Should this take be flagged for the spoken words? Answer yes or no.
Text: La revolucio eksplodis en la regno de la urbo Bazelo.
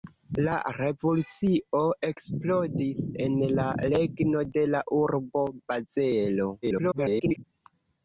yes